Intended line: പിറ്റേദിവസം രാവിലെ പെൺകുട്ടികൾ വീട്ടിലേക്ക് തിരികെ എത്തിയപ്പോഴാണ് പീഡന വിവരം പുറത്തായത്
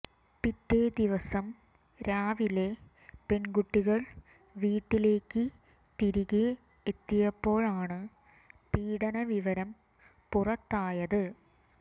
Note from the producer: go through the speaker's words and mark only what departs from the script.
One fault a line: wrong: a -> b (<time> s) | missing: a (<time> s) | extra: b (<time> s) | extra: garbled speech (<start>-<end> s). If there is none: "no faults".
no faults